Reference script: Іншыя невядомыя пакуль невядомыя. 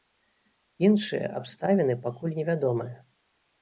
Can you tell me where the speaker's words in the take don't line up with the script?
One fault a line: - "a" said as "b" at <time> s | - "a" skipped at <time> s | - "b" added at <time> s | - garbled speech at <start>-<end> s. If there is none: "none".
- "невядомыя" said as "абставіны" at 1.4 s